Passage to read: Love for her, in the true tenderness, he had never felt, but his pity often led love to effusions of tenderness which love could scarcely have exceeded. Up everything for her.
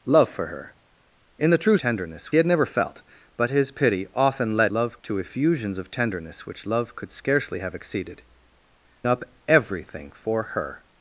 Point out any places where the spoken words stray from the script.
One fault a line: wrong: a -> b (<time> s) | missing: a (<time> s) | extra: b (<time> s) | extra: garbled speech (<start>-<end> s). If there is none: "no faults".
no faults